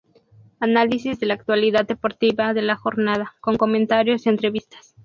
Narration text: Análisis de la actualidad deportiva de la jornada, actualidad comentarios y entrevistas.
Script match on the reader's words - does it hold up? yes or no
no